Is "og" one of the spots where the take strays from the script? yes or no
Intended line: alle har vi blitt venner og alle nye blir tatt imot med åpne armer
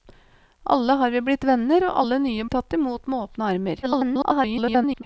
no